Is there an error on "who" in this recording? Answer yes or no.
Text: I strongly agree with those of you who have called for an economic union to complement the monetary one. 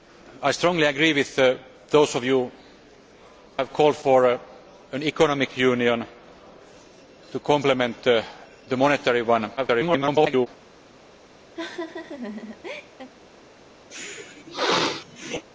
yes